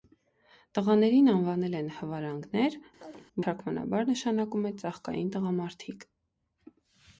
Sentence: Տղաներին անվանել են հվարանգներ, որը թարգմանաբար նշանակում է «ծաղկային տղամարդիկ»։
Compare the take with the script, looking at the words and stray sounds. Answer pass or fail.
fail